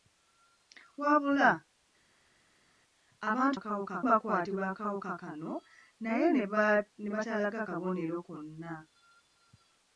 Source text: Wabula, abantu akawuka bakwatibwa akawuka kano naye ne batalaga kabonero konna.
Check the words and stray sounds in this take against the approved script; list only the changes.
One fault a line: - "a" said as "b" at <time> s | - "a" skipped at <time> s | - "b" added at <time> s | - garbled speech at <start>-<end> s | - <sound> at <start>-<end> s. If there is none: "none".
none